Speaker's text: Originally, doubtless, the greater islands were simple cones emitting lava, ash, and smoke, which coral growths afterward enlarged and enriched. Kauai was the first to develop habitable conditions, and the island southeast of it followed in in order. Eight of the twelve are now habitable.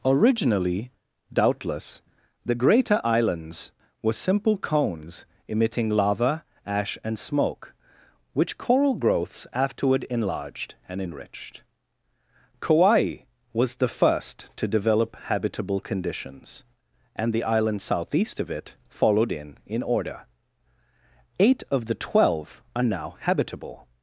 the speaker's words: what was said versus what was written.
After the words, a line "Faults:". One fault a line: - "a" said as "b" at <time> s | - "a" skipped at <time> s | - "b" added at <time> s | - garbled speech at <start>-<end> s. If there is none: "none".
Originally, doubtless, the greater islands were simple cones emitting lava, ash, and smoke, which coral growths afterward enlarged and enriched. Kauai was the first to develop habitable conditions, and the island southeast of it followed in in order. Eight of the twelve are now habitable.
Faults:
none